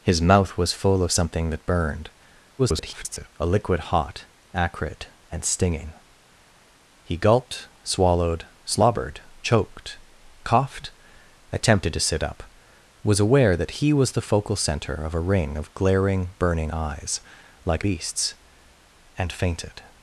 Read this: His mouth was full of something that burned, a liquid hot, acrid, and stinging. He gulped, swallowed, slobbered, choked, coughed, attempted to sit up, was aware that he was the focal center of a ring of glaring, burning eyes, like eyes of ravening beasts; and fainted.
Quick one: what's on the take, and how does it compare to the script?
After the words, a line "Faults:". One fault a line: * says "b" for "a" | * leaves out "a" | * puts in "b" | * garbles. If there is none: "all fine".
His mouth was full of something that burned, [garbled] a liquid hot, acrid, and stinging. He gulped, swallowed, slobbered, choked, coughed, attempted to sit up, was aware that he was the focal center of a ring of glaring, burning eyes, like beasts; and fainted.
Faults:
* garbles
* leaves out "eyes of ravening"